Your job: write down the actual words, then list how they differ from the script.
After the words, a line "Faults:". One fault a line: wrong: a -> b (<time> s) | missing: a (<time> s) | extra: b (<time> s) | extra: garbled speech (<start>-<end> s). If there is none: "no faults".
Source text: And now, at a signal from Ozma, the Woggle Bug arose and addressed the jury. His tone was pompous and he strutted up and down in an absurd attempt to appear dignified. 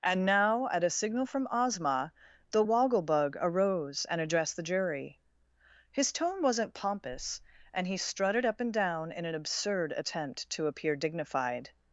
And now, at a signal from Ozma, the Woggle Bug arose and addressed the jury. His tone wasn't pompous and he strutted up and down in an absurd attempt to appear dignified.
Faults:
wrong: was -> wasn't (6.4 s)